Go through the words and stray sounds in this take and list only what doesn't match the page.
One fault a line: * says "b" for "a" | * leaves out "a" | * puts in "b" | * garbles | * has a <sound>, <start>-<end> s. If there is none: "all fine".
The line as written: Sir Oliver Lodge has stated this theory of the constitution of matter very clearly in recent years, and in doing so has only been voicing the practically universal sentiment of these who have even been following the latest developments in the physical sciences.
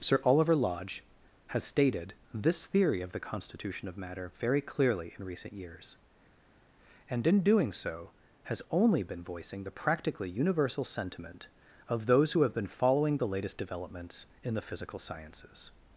* says "those" for "these"
* leaves out "even"